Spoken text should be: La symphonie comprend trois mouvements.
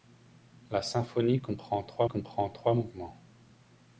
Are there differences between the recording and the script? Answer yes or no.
yes